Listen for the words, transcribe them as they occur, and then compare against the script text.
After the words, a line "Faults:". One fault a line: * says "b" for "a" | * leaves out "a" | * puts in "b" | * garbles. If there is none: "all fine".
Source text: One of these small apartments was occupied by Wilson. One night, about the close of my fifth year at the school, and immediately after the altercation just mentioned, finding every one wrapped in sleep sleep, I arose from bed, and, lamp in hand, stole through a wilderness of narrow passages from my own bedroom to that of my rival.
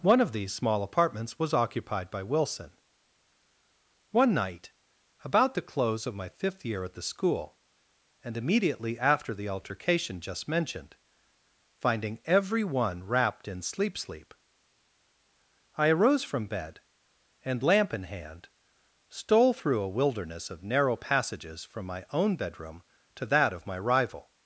One of these small apartments was occupied by Wilson. One night, about the close of my fifth year at the school, and immediately after the altercation just mentioned, finding every one wrapped in sleep sleep, I arose from bed, and, lamp in hand, stole through a wilderness of narrow passages from my own bedroom to that of my rival.
Faults:
all fine